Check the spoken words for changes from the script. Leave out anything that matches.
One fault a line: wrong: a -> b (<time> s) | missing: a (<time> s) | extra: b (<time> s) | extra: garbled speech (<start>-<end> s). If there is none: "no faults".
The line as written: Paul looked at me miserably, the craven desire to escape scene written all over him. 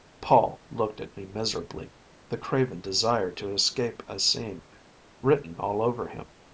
extra: a (4.1 s)